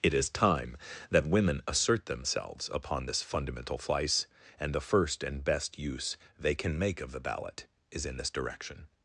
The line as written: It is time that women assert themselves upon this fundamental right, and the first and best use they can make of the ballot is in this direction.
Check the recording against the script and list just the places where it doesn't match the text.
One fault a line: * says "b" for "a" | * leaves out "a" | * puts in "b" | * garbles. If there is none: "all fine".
* says "flice" for "right"